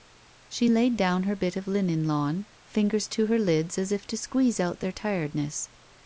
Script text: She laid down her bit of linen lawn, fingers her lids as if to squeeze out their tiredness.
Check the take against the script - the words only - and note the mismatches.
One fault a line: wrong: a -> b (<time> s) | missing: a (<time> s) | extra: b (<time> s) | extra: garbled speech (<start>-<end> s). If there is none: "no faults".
extra: to (3.1 s)